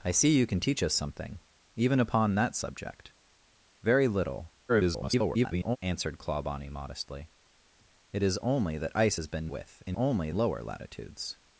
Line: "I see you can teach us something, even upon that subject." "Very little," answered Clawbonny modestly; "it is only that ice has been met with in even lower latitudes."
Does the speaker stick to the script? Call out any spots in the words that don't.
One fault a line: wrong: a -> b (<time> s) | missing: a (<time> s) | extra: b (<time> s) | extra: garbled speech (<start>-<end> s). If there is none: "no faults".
extra: garbled speech (4.7-5.8 s)
missing: met (9.5 s)
wrong: even -> only (9.9 s)